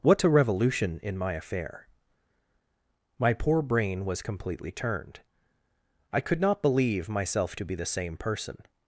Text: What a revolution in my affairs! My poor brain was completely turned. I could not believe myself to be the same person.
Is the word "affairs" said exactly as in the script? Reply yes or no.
no